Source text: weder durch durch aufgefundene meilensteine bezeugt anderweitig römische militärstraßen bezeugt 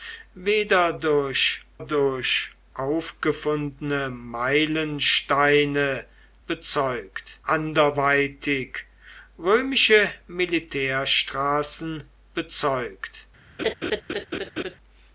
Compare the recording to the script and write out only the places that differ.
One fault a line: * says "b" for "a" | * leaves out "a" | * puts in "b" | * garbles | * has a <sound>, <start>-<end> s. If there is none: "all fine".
* has a laugh, 13.6-14.8 s